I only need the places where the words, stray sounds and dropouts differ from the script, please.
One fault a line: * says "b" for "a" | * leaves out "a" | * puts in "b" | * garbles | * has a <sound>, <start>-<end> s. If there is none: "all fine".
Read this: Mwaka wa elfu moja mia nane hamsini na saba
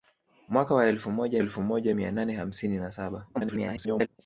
* puts in "elfu moja"
* garbles